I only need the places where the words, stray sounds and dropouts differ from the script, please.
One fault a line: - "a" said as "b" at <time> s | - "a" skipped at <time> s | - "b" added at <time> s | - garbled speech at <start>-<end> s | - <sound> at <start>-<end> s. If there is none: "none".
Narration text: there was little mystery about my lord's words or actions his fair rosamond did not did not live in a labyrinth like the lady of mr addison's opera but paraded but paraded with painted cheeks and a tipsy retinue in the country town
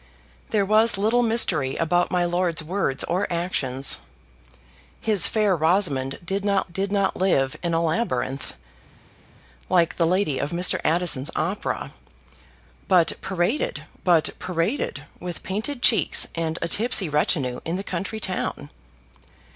none